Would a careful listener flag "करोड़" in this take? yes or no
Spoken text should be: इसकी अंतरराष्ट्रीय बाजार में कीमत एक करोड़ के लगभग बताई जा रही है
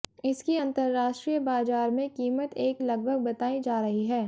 yes